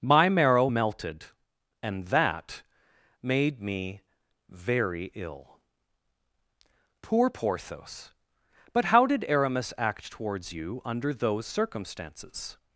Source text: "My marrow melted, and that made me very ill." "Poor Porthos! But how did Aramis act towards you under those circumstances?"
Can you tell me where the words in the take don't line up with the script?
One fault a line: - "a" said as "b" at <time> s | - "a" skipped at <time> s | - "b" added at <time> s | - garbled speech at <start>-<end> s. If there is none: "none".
none